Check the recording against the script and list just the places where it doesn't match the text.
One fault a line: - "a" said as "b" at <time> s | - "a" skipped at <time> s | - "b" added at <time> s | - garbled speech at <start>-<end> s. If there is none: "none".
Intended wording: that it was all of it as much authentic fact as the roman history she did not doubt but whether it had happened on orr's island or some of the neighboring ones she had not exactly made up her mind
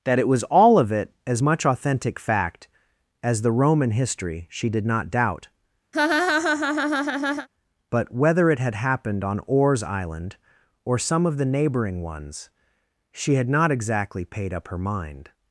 - "made" said as "paid" at 14.2 s